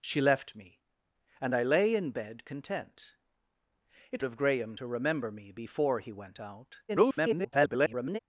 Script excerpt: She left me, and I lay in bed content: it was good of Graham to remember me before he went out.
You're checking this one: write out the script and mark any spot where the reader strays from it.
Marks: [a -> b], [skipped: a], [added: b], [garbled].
She left me, and I lay in bed content: it [skipped: was good] of Graham to remember me before he went out. [garbled]